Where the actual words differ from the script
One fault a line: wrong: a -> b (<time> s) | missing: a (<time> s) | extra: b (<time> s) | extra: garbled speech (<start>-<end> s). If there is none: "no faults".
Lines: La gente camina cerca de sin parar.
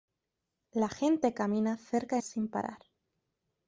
no faults